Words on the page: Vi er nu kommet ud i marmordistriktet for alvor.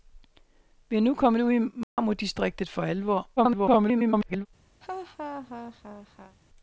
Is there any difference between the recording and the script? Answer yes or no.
yes